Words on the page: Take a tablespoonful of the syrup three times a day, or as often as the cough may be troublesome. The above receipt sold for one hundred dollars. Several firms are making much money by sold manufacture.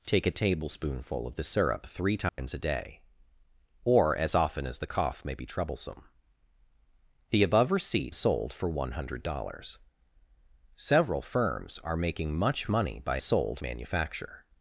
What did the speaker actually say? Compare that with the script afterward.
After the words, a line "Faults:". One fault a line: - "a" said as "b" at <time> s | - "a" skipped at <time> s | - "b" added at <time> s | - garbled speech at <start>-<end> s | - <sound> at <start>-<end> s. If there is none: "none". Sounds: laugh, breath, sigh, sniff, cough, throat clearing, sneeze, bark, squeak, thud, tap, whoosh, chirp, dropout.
Take a tablespoonful of the syrup three times a day, or as often as the cough may be troublesome. The above receipt sold for one hundred dollars. Several firms are making much money by sold manufacture.
Faults:
- dropout at 2.3-2.4 s